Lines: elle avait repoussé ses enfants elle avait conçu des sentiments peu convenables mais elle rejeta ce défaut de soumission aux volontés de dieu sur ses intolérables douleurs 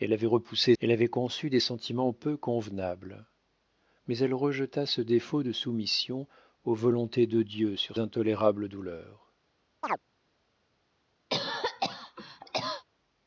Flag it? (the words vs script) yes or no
yes